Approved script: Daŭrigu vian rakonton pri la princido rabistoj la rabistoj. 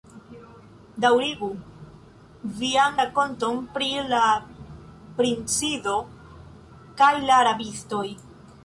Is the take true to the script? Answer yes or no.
no